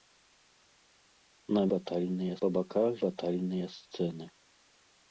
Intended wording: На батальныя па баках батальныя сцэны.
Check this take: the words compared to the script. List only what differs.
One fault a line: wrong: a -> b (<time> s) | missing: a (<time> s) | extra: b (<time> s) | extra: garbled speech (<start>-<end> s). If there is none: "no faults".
no faults